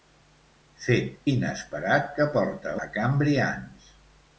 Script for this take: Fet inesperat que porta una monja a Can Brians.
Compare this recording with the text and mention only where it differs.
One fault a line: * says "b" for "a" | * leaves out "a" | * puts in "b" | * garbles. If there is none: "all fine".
* leaves out "una monja"